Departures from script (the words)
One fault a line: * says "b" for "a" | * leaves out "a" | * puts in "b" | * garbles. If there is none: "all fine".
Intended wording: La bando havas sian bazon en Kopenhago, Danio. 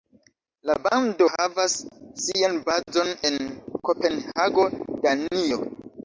all fine